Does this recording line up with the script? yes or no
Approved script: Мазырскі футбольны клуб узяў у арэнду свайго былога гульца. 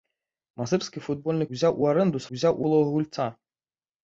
no